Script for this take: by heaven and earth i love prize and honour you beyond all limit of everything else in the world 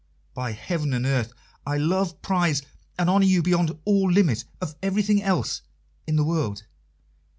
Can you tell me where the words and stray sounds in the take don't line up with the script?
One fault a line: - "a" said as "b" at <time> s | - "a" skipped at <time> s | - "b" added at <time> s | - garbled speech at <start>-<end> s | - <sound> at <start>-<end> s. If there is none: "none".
none